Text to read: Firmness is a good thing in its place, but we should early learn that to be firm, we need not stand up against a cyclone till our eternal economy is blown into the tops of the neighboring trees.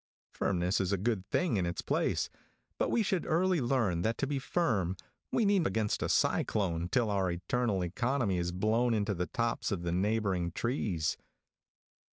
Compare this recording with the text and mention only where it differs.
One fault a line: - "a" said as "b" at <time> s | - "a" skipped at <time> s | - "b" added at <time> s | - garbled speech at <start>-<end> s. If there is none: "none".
- "not stand up" skipped at 5.6 s